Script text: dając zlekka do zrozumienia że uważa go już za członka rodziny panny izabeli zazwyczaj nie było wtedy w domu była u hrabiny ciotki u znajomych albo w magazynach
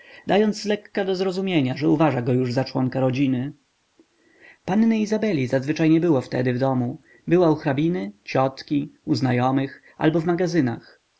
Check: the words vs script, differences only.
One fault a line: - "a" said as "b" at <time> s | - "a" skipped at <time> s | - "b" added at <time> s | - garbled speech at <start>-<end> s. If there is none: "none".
none